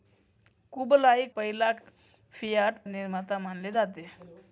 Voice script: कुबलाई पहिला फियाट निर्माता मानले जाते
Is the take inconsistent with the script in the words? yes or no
no